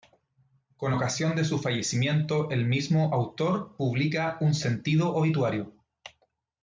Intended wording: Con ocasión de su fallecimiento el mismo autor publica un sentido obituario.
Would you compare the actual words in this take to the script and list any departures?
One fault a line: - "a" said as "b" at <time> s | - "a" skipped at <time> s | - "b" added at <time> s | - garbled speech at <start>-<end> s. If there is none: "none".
none